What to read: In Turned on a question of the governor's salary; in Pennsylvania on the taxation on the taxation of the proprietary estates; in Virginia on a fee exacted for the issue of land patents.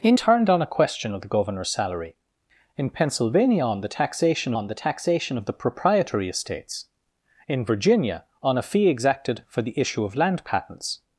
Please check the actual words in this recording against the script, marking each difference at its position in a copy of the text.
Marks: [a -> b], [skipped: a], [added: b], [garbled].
In Turned on a question of the governor's salary; in Pennsylvania on the taxation on the taxation of the proprietary estates; in Virginia on a fee exacted for the issue of land patents.